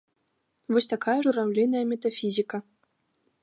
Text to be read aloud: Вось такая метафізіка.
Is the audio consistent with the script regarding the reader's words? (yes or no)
no